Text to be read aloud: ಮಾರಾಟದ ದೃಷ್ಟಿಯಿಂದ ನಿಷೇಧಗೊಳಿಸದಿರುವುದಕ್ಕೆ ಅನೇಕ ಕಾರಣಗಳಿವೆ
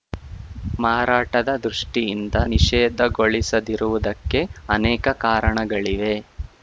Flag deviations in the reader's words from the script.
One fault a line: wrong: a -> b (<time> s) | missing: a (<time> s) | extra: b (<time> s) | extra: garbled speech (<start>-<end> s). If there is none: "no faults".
no faults